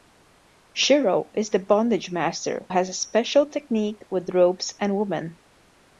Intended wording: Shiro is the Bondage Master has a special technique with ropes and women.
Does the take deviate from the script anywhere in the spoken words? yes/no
no